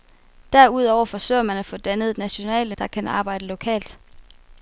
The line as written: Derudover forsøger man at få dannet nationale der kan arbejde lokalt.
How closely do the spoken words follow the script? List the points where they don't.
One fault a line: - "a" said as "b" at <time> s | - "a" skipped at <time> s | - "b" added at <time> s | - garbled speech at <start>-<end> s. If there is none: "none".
none